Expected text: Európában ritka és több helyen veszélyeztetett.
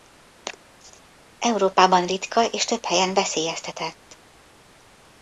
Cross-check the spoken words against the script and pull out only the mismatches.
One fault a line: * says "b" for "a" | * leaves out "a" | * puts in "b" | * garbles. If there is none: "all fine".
all fine